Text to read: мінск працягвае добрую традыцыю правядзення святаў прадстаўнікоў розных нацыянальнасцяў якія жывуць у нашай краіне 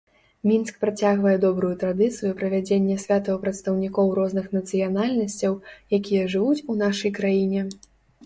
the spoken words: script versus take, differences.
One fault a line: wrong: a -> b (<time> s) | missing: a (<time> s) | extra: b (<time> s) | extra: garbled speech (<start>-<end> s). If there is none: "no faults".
no faults